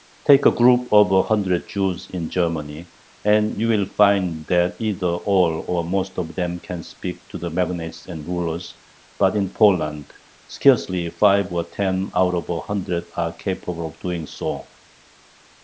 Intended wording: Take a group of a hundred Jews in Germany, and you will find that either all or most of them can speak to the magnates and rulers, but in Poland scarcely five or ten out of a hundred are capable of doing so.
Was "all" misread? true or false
false